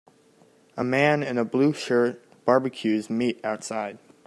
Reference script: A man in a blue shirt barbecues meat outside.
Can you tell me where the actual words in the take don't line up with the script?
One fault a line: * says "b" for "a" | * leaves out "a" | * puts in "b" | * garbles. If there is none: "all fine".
all fine